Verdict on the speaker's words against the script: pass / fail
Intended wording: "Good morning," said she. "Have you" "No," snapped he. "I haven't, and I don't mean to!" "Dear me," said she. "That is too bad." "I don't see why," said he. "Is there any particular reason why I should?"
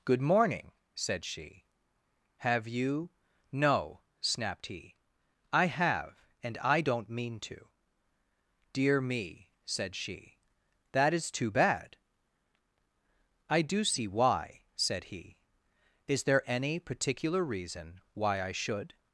fail